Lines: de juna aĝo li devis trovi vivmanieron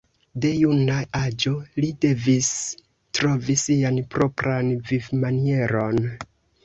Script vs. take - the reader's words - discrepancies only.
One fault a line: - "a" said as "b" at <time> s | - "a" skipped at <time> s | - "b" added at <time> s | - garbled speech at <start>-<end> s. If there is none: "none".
- "sian propran" added at 3.6 s